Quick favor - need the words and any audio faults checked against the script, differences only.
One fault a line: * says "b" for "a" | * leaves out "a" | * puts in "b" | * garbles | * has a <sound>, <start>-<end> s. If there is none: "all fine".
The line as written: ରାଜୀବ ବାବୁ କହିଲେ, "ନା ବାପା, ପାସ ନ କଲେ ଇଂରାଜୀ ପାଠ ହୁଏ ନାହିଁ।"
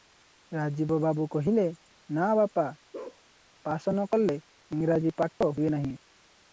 * has a bark, 2.9-3.2 s
* has a dropout, 5.3-5.4 s